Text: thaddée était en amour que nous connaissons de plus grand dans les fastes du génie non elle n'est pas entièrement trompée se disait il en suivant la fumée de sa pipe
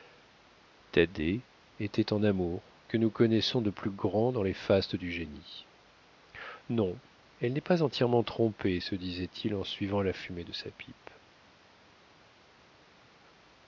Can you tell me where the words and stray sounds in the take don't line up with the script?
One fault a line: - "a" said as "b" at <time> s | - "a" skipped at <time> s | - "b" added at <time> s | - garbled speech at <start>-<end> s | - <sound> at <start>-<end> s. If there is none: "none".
none